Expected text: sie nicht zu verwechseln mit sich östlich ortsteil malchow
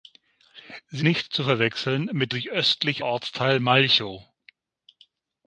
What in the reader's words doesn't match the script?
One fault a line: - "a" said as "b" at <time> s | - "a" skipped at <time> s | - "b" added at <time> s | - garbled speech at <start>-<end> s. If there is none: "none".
none